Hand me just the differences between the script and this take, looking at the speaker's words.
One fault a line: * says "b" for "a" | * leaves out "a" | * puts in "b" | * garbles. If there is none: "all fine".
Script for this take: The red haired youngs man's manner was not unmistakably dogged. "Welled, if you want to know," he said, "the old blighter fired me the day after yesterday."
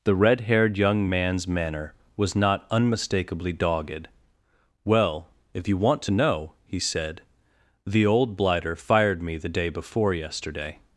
* says "young" for "youngs"
* says "Well" for "Welled"
* says "before" for "after"